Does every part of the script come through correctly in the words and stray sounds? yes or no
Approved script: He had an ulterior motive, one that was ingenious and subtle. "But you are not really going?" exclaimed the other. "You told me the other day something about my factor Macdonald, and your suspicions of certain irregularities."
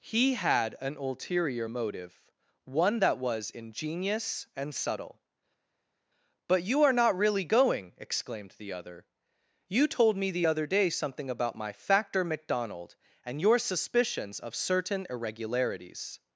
yes